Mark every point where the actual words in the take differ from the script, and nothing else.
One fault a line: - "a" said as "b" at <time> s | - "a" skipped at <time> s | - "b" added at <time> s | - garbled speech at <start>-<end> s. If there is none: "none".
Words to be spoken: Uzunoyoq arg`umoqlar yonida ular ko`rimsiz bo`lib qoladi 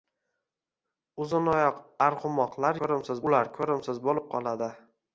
- "yonida" said as "ko`rimsiz" at 2.8 s